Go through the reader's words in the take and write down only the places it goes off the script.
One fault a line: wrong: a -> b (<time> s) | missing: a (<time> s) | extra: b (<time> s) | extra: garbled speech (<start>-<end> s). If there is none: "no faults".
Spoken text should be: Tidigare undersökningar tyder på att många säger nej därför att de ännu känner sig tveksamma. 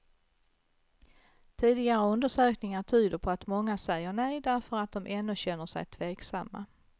no faults